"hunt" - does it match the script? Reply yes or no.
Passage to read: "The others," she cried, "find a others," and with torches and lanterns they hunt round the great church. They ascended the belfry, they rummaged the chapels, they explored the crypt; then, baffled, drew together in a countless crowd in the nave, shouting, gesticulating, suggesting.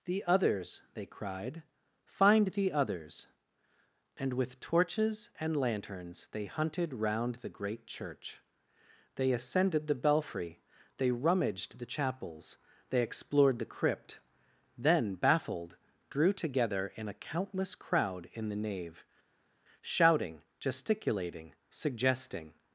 no